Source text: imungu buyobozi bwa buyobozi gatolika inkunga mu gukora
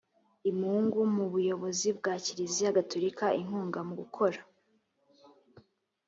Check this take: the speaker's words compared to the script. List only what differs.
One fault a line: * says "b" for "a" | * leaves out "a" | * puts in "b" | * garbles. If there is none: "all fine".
* puts in "mu"
* says "kiliziya" for "buyobozi"